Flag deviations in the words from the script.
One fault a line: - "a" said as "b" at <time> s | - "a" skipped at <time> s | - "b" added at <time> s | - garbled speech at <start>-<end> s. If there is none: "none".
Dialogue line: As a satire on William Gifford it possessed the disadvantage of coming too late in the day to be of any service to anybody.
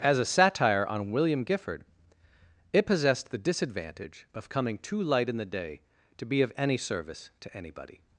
- "late" said as "light" at 5.0 s